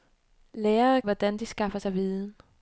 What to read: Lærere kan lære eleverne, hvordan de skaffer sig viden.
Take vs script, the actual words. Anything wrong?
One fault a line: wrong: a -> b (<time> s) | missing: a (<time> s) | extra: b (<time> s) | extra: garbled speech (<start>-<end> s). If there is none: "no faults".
missing: kan lære eleverne (1.0 s)